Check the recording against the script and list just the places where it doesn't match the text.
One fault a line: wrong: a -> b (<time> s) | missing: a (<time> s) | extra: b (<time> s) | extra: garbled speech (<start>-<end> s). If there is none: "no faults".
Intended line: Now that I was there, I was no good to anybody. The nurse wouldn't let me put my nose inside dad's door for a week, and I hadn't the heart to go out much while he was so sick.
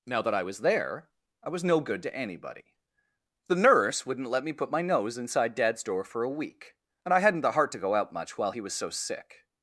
no faults